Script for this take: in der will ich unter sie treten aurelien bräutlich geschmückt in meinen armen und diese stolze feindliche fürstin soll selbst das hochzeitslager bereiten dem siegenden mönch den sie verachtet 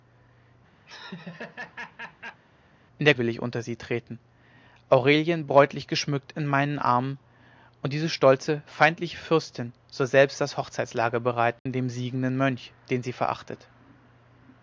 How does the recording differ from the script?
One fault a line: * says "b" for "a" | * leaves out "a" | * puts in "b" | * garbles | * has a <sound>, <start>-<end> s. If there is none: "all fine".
* has a laugh, 0.9-2.4 s
* has a dropout, 11.6-11.7 s